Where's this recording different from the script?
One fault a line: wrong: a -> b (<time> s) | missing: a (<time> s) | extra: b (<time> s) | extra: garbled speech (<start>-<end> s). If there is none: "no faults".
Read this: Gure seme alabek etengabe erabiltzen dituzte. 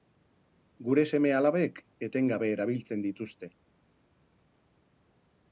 no faults